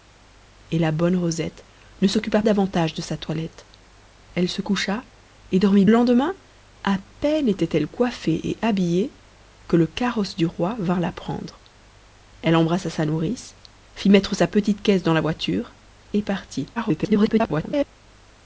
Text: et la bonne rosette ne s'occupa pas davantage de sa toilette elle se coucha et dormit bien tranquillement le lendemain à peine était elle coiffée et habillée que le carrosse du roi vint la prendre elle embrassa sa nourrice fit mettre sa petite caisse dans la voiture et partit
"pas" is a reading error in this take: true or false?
true